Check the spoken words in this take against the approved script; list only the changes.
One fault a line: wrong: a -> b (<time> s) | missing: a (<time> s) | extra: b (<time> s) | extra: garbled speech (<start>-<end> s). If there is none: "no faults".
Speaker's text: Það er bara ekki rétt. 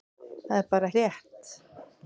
missing: ekki (0.9 s)